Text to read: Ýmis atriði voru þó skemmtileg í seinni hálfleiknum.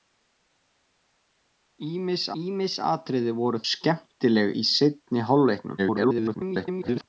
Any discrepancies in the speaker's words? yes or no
yes